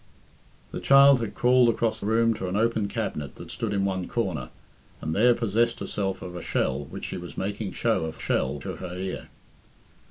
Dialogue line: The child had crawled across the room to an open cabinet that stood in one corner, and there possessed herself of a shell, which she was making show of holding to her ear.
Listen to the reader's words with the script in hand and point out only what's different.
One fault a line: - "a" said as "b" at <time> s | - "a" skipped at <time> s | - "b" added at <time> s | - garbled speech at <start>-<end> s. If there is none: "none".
- "the" skipped at 2.0 s
- "holding" said as "shell" at 8.2 s